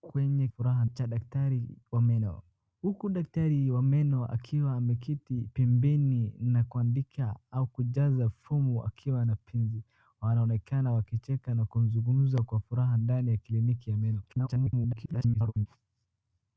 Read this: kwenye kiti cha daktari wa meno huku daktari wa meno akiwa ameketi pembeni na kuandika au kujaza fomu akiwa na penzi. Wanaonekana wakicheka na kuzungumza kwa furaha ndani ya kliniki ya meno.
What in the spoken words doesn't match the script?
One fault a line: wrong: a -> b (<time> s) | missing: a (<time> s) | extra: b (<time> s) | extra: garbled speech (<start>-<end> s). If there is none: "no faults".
wrong: kiti -> furaha (0.5 s)
extra: garbled speech (14.3-15.7 s)